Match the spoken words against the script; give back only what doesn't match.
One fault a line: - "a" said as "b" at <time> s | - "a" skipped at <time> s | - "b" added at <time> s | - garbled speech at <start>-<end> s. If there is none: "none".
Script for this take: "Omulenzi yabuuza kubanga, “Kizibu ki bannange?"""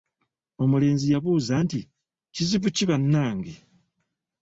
- "kubanga" said as "nti" at 1.6 s